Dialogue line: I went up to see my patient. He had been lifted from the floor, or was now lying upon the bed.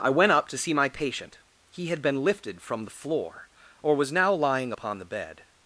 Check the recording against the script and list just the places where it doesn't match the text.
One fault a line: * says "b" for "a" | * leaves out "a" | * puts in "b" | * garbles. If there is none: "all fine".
all fine